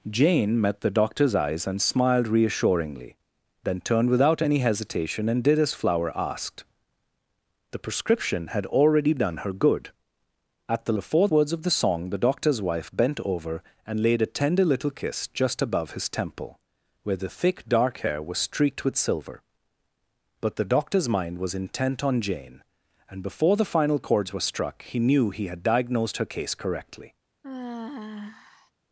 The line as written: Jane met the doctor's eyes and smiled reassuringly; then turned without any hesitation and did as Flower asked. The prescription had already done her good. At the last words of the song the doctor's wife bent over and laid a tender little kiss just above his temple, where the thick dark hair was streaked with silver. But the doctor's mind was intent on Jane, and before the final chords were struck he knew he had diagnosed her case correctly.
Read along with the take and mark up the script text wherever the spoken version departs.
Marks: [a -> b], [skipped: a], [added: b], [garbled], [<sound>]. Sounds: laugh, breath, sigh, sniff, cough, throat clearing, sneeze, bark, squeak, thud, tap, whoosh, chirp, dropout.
Jane met the doctor's eyes and smiled reassuringly; then turned without any hesitation and did as Flower asked. The prescription had already done her good. At the [last -> before] words of the song the doctor's wife bent over and laid a tender little kiss just above his temple, where the thick dark hair was streaked with silver. But the doctor's mind was intent on Jane, and before the final chords were struck he knew he had diagnosed her case correctly. [sigh]